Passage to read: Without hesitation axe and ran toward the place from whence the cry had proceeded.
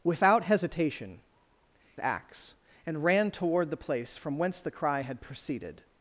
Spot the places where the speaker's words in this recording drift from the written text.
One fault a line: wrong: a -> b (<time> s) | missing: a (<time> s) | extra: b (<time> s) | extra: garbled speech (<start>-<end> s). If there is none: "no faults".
no faults